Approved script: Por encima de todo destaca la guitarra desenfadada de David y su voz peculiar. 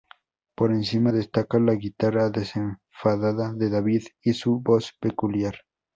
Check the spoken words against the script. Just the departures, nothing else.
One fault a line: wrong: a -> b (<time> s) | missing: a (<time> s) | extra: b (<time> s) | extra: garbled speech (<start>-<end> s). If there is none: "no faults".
missing: de todo (1.1 s)